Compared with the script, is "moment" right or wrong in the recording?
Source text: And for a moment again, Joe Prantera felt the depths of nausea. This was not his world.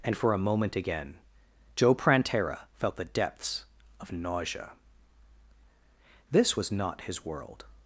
right